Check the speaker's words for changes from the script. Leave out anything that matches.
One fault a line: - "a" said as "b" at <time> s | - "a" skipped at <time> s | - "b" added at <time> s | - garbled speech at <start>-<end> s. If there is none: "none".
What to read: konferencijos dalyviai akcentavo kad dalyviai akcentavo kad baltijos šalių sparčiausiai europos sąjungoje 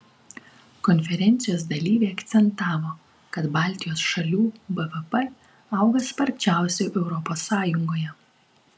- "dalyviai akcentavo kad baltijos šalių" said as "baltijos šalių bvp auga" at 3.6 s